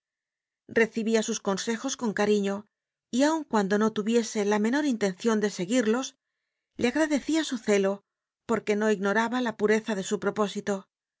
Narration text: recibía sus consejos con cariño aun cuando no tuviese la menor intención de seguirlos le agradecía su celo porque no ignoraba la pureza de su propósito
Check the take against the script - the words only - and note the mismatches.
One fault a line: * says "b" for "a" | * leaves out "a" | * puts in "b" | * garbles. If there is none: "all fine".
* puts in "y"